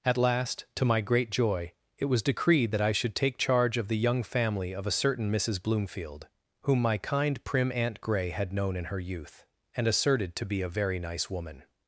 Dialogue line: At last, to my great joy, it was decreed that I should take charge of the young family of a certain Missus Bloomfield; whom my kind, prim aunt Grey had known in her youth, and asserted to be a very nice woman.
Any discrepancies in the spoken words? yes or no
no